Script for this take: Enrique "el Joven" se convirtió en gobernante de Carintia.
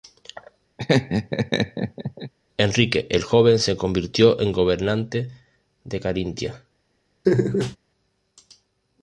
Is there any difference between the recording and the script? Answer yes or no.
no